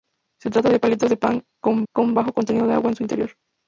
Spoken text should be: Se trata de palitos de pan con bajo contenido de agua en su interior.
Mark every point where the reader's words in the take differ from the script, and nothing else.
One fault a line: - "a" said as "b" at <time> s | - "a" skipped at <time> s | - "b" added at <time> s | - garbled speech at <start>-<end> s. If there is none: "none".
- "con" added at 1.9 s